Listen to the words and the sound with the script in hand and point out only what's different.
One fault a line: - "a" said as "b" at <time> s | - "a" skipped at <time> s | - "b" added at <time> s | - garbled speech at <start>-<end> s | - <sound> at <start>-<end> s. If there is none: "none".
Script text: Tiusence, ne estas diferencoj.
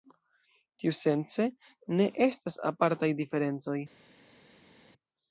- "apartaj" added at 2.7 s